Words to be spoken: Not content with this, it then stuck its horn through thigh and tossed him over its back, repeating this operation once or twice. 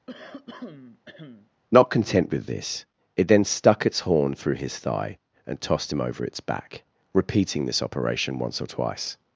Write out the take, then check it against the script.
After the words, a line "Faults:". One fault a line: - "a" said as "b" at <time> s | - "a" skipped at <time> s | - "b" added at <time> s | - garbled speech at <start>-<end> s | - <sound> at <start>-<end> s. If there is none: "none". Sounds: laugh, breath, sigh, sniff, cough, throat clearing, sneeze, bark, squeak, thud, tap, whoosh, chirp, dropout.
Not content with this, it then stuck its horn through his thigh and tossed him over its back, repeating this operation once or twice.
Faults:
- throat clearing at 0.1-1.5 s
- "his" added at 4.5 s